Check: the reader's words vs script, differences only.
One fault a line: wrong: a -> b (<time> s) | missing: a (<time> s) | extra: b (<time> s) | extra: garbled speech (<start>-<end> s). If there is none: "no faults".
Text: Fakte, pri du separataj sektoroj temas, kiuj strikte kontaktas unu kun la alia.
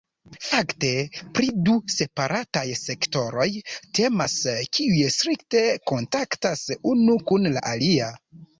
no faults